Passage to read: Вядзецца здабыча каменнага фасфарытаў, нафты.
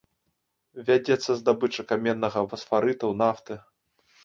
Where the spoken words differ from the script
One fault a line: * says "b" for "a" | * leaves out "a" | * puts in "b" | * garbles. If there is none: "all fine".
all fine